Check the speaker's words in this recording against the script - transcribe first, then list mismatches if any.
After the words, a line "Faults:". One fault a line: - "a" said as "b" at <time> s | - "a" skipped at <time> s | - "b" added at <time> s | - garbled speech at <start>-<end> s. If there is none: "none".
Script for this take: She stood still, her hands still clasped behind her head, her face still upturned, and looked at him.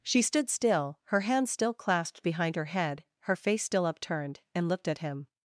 She stood still, her hands still clasped behind her head, her face still upturned, and looked at him.
Faults:
none